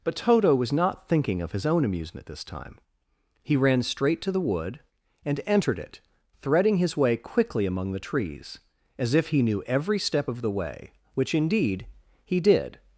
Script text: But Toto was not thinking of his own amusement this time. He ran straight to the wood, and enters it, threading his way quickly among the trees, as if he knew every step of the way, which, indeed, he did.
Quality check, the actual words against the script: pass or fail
fail